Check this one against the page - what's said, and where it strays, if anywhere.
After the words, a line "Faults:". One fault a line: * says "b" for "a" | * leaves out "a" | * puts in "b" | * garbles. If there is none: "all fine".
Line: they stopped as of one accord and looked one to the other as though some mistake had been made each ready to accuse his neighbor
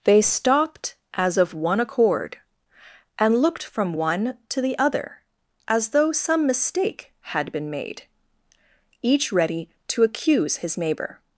they stopped as of one accord and looked from one to the other as though some mistake had been made each ready to accuse his neighbor
Faults:
* puts in "from"